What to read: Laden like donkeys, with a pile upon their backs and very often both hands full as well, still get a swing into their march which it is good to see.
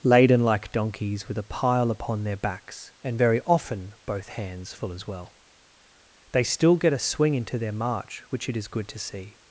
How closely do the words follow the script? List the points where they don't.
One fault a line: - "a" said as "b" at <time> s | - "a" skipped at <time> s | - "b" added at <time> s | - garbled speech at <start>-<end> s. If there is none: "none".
- "they" added at 6.3 s